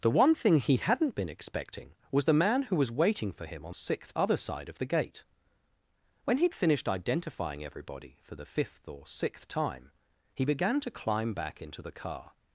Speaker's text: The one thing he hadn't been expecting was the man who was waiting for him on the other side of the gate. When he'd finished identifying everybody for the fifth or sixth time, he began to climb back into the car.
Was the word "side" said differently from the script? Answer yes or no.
no